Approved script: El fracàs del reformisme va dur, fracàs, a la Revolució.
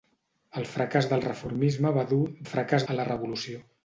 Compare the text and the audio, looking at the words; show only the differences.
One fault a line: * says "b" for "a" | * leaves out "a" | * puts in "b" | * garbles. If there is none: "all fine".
all fine